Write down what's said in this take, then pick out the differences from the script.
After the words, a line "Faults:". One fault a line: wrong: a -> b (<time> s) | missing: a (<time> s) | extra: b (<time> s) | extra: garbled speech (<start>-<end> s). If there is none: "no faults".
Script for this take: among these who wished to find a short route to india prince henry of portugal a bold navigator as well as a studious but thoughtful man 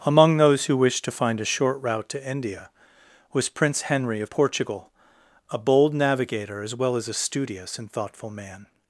among those who wished to find a short route to india was prince henry of portugal a bold navigator as well as a studious and thoughtful man
Faults:
wrong: these -> those (0.4 s)
extra: was (3.3 s)
wrong: but -> and (7.8 s)